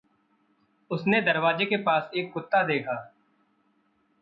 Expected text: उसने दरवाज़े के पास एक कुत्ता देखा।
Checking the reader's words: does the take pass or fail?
pass